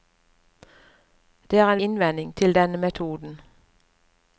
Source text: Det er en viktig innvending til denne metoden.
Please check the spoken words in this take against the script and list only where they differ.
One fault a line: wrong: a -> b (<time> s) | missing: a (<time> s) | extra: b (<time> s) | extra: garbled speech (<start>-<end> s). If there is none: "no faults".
missing: viktig (1.8 s)